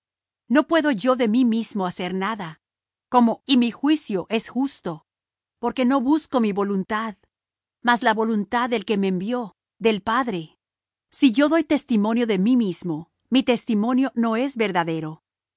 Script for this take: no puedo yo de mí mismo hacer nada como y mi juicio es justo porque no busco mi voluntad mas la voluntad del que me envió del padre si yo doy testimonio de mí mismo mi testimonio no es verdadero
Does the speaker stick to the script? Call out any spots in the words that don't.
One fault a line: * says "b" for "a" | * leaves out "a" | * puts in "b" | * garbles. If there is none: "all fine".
all fine